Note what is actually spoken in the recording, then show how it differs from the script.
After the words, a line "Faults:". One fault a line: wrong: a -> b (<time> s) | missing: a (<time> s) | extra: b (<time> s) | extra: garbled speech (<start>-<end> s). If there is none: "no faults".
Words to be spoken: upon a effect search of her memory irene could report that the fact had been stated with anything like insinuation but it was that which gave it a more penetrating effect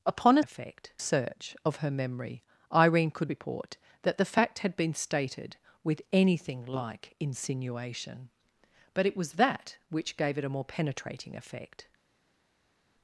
upon a effect search of her memory irene could report that the fact had been stated with anything like insinuation but it was that which gave it a more penetrating effect
Faults:
no faults